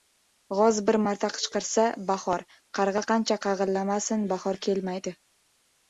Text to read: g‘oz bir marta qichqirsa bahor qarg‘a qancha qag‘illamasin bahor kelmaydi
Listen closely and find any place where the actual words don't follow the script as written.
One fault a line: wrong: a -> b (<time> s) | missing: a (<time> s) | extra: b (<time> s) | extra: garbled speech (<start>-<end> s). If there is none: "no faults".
no faults